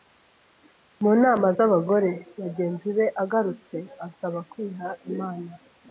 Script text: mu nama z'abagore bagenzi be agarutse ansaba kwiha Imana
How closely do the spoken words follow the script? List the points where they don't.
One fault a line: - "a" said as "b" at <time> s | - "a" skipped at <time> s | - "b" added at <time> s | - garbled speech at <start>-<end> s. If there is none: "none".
none